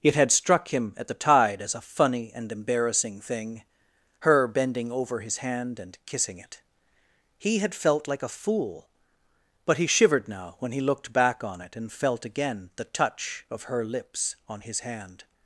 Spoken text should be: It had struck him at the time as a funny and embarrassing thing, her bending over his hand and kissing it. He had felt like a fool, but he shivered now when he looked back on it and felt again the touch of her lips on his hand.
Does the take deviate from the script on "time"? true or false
true